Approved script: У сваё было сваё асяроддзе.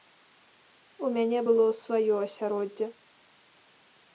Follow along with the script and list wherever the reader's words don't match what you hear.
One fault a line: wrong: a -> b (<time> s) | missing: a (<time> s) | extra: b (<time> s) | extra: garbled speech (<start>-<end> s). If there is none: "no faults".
wrong: сваё -> мяне (1.2 s)